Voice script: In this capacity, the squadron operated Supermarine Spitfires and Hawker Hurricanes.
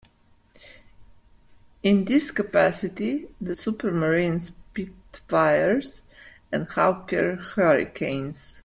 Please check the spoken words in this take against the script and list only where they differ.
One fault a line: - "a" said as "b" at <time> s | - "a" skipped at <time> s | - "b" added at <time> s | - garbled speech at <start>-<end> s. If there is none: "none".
- "squadron operated" skipped at 3.5 s